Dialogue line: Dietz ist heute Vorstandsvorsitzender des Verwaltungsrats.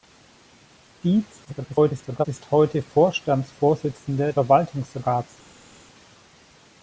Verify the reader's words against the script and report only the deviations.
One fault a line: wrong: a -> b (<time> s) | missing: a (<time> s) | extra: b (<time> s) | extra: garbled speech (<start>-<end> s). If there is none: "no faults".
extra: garbled speech (1.4-2.3 s)
missing: des (4.3 s)